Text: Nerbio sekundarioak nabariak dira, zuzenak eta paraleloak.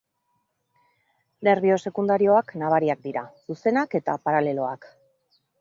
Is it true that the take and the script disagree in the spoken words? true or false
false